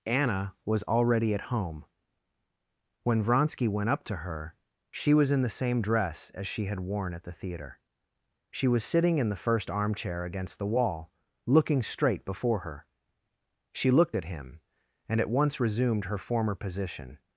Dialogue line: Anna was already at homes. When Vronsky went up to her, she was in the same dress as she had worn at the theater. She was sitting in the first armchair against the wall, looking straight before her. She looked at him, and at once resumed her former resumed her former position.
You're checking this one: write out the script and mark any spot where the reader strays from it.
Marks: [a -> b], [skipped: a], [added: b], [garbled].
Anna was already at [homes. -> home] When Vronsky went up to her, she was in the same dress as she had worn at the theater. She was sitting in the first armchair against the wall, looking straight before her. She looked at him, and at once resumed her former [skipped: resumed her former] position.